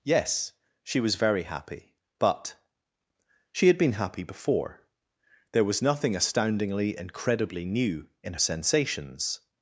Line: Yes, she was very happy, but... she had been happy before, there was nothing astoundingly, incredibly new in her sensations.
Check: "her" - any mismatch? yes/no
yes